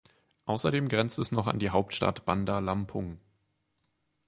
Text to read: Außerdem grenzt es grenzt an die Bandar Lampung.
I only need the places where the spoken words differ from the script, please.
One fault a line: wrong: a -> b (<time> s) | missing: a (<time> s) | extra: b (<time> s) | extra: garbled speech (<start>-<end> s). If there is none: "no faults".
wrong: grenzt -> noch (1.3 s)
extra: Hauptstadt (1.7 s)